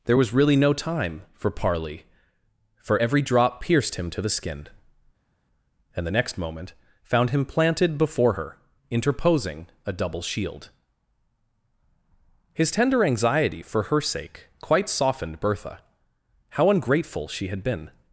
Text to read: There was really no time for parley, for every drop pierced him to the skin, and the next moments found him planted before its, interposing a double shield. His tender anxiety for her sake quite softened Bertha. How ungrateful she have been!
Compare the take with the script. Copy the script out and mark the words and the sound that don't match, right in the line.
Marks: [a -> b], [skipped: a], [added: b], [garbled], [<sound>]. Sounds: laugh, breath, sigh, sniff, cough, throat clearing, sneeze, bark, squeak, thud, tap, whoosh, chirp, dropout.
There was really no time for parley, for every drop pierced him to the skin, and the next [moments -> moment] found him planted before [its, -> her] interposing a double shield. His tender anxiety for her sake quite softened Bertha. How ungrateful she [have -> had] been!